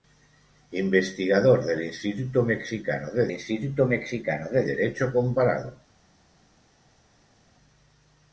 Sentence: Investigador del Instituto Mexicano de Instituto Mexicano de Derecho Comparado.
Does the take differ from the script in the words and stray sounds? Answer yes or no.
no